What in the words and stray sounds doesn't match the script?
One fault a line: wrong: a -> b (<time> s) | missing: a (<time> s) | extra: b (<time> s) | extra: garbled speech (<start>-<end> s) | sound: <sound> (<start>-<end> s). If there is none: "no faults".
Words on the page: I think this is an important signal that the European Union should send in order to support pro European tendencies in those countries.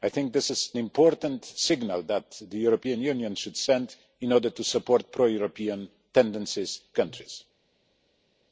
missing: an (0.7 s)
missing: in those (6.8 s)